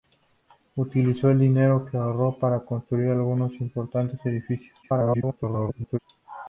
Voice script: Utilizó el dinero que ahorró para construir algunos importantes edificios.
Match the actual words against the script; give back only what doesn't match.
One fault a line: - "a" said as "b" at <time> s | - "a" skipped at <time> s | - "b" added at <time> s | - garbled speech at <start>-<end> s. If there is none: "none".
- garbled speech at 4.8-6.0 s